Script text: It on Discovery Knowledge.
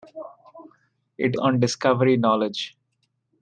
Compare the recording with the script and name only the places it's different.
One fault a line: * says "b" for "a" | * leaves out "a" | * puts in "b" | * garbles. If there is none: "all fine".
all fine